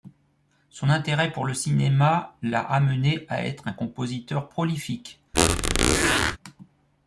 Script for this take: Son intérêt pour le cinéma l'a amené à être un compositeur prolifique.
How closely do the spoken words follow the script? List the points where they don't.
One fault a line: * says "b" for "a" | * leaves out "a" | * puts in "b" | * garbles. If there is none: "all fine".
all fine